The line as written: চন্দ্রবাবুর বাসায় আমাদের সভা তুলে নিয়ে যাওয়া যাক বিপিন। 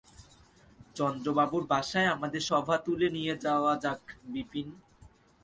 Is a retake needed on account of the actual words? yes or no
no